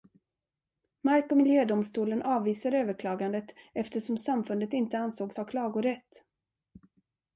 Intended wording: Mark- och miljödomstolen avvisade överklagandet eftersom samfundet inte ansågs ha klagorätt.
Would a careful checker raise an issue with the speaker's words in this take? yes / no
no